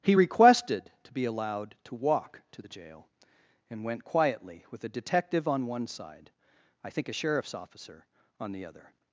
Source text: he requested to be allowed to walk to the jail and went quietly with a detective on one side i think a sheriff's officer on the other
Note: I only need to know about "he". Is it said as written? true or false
true